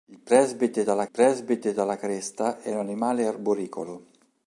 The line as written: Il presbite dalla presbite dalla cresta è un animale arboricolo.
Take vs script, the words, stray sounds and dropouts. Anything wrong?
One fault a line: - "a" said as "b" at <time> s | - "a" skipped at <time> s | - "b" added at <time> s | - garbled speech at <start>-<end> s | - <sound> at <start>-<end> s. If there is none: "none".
none